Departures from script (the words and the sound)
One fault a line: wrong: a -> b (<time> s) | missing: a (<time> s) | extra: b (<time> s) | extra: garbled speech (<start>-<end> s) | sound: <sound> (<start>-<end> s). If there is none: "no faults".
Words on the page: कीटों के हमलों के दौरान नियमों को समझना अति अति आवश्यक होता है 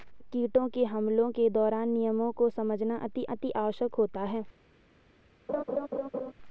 sound: laugh (5.5-6.3 s)